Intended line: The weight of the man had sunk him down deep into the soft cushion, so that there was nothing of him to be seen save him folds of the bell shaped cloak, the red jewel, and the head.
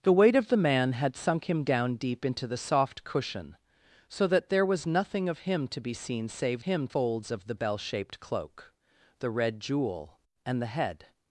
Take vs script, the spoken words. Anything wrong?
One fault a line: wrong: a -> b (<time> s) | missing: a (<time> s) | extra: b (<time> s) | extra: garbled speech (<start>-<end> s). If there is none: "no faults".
no faults